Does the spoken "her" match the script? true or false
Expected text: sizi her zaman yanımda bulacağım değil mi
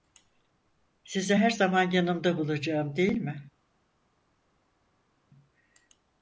true